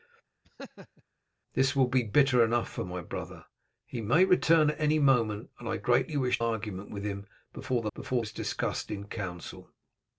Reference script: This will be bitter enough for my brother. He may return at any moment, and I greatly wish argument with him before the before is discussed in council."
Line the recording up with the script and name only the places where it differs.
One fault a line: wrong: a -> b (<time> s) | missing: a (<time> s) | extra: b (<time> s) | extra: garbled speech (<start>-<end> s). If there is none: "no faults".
no faults